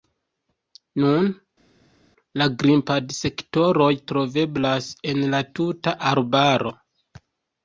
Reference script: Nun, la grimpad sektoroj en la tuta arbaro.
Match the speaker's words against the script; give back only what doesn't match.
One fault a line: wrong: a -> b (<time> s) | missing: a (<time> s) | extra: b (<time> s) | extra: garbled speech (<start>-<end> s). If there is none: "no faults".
extra: troveblas (4.1 s)